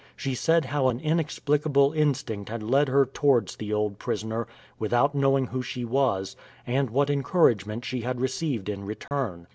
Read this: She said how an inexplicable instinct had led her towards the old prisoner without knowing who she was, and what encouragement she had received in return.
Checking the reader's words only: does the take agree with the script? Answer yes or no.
yes